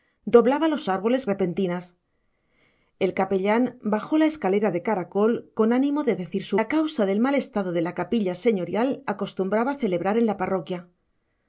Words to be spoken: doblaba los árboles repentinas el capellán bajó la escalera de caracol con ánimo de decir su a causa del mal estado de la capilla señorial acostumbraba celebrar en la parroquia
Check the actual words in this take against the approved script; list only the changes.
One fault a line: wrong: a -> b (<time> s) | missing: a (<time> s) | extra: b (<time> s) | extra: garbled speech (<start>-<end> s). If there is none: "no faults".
no faults